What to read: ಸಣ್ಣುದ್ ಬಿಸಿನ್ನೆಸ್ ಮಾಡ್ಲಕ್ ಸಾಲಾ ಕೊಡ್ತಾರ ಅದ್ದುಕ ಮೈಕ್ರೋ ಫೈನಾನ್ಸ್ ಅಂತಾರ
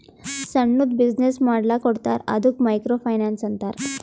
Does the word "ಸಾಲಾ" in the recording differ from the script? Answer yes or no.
yes